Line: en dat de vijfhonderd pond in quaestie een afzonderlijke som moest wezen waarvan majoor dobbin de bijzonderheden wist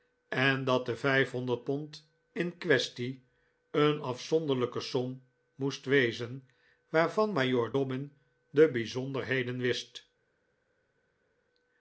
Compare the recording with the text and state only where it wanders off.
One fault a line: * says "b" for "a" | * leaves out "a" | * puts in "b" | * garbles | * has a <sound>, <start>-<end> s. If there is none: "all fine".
all fine